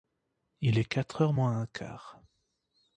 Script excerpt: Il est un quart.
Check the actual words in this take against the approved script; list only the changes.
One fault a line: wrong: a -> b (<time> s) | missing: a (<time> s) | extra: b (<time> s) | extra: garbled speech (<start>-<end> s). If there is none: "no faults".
extra: quatre heures moins (0.9 s)